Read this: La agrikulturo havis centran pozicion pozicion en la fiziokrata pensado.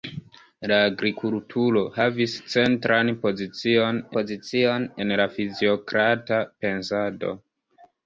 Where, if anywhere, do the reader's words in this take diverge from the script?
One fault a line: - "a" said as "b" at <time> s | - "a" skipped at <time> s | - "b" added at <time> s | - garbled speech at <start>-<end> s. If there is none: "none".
none